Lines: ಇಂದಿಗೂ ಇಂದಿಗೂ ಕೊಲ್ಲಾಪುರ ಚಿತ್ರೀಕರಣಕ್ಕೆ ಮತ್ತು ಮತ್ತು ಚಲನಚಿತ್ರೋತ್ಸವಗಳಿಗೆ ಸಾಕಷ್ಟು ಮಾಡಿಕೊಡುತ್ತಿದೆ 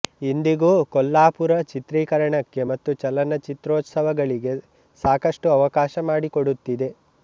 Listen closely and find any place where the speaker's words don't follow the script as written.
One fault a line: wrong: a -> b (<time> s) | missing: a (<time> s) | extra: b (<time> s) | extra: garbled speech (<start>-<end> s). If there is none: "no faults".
missing: ಇಂದಿಗೂ (0.7 s)
missing: ಮತ್ತು (2.9 s)
extra: ಅವಕಾಶ (5.6 s)